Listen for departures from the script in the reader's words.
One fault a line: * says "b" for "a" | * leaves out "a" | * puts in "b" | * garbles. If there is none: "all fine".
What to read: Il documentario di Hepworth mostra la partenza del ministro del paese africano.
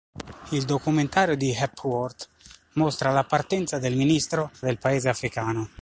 all fine